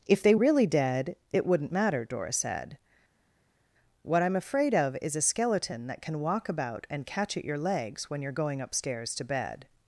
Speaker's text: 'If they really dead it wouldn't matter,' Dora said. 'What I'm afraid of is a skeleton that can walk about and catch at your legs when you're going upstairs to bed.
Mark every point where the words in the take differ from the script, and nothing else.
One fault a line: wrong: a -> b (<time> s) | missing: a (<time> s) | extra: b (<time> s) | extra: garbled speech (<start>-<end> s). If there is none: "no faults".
no faults